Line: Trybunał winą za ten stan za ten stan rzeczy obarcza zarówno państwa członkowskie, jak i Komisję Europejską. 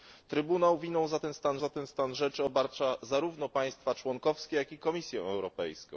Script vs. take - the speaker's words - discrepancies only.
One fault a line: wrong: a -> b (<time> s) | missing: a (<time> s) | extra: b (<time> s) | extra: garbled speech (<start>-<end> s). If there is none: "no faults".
no faults